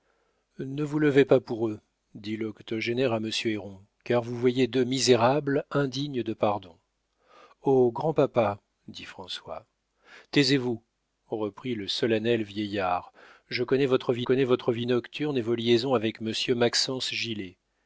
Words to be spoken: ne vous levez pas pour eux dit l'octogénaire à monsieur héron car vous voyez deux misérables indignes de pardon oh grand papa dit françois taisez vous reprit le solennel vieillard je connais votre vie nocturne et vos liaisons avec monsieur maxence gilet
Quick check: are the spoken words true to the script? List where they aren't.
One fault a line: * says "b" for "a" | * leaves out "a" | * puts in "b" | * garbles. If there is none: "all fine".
* puts in "connais votre vie"